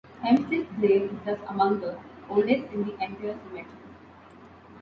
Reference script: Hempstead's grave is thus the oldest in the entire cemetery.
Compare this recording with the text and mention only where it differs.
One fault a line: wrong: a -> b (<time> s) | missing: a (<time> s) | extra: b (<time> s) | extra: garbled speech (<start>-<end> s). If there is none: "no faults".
extra: among (1.5 s)